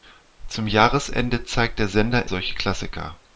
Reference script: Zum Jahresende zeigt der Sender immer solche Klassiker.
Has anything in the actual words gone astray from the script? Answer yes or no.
yes